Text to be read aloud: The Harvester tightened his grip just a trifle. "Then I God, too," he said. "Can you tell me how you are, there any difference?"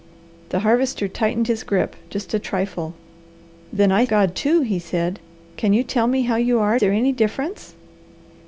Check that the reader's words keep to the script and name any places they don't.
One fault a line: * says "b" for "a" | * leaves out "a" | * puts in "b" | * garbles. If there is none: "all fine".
all fine